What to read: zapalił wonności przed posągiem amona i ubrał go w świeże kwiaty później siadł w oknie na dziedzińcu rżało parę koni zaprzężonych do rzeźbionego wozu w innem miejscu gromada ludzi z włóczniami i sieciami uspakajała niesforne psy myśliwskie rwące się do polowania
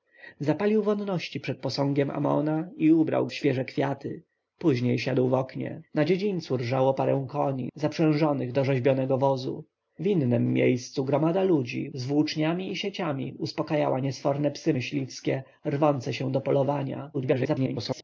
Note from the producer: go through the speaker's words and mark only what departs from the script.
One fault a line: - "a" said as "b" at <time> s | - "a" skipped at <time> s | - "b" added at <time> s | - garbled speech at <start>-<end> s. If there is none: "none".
- "go" skipped at 3.3 s
- garbled speech at 17.1-18.0 s